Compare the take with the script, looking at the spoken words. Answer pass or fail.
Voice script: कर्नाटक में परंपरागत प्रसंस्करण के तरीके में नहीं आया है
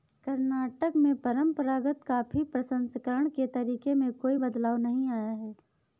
fail